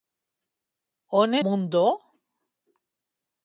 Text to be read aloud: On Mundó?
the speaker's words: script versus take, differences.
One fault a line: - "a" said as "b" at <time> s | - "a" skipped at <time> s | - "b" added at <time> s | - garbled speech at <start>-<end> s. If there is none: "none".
none